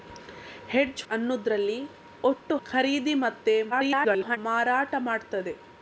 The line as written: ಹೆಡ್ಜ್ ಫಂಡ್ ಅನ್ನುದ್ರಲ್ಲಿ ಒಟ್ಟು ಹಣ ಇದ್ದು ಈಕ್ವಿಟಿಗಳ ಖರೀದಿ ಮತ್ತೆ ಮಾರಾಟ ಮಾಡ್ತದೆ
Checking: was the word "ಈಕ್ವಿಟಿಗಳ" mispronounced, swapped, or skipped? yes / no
yes